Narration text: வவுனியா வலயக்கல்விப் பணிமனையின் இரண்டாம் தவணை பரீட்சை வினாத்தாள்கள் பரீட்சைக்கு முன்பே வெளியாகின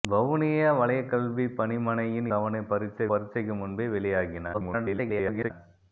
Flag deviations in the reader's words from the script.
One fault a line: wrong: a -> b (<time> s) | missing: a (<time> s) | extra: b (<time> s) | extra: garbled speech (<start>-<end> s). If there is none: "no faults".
missing: இரண்டாம் (2.3 s)
missing: வினாத்தாள்கள் (3.1 s)
extra: garbled speech (4.5-5.5 s)